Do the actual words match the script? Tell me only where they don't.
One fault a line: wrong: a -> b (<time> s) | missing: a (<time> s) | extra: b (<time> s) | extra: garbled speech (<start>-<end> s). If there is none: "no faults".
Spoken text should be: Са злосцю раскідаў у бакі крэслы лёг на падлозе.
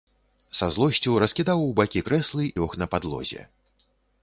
no faults